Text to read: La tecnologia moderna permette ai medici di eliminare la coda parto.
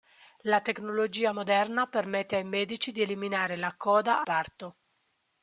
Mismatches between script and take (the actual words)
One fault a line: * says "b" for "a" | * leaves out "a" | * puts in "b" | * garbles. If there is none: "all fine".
all fine